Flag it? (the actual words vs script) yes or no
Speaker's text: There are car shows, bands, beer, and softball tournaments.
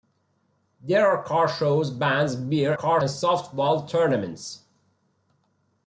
yes